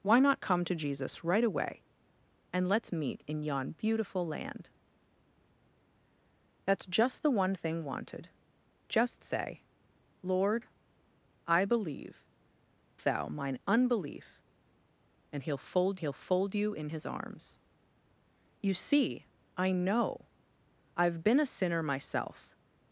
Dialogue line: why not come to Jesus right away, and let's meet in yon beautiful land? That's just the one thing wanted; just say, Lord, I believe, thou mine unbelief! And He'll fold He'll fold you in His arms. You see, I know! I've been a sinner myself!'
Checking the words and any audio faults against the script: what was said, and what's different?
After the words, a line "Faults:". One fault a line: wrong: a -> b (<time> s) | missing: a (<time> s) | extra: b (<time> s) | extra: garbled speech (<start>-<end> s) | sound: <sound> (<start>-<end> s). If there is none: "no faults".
why not come to Jesus right away, and let's meet in yon beautiful land? That's just the one thing wanted; just say, Lord, I believe, thou mine unbelief! And He'll fold He'll fold you in His arms. You see, I know! I've been a sinner myself!'
Faults:
no faults